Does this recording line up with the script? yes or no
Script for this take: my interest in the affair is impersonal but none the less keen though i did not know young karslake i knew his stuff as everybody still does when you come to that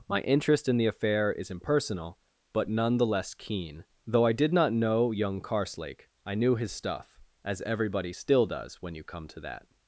yes